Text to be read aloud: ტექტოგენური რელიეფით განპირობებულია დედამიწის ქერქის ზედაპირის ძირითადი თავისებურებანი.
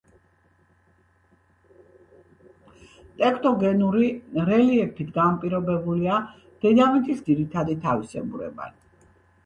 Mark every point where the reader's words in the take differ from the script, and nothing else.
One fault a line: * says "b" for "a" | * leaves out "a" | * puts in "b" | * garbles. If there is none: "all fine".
* leaves out "ქერქის ზედაპირის"